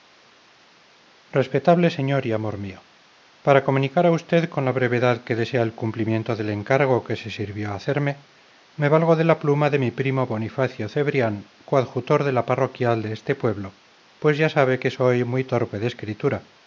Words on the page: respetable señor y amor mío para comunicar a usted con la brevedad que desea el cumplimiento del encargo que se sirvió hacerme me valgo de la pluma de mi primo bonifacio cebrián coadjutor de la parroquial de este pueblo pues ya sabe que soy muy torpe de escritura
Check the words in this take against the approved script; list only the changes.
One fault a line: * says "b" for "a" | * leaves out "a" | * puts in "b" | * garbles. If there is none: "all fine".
all fine